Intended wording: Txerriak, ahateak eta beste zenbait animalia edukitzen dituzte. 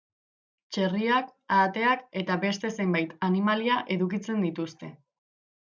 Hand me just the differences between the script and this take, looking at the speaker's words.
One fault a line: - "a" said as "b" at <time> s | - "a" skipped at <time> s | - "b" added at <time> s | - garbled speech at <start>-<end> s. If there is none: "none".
none